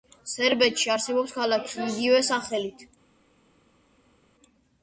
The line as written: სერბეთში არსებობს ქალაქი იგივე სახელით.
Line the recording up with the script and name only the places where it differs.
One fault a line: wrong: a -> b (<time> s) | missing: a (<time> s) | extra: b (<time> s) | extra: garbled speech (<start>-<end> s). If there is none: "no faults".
no faults